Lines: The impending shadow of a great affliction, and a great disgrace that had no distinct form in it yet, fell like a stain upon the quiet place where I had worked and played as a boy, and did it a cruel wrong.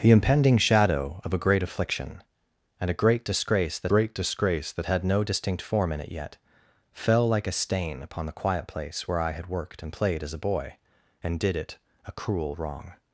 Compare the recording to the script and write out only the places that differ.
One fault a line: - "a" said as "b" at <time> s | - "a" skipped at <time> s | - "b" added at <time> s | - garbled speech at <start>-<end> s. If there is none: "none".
- "great disgrace that" added at 3.9 s